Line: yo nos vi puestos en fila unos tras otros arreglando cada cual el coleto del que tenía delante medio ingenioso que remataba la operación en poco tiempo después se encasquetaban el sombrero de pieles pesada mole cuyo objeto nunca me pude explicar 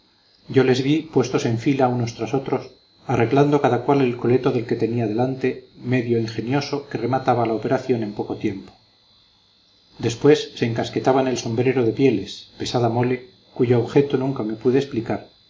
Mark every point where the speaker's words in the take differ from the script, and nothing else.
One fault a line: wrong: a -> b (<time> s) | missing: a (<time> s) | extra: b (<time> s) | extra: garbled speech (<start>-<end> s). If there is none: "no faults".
wrong: nos -> les (0.6 s)